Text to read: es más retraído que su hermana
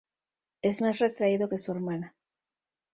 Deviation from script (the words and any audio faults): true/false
false